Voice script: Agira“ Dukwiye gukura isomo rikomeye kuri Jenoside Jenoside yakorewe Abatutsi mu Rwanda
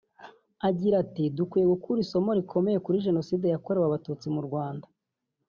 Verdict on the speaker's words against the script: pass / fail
fail